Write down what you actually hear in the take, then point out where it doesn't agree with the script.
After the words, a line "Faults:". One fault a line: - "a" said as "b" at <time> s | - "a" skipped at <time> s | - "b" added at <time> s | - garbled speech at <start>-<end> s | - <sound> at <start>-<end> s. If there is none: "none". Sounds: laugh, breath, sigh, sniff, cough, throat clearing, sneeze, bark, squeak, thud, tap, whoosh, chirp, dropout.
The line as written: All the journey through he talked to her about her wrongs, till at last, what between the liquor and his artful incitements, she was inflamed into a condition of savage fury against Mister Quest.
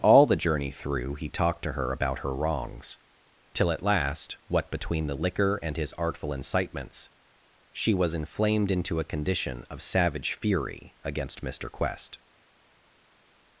All the journey through he talked to her about her wrongs, till at last, what between the liquor and his artful incitements, she was inflamed into a condition of savage fury against Mister Quest.
Faults:
none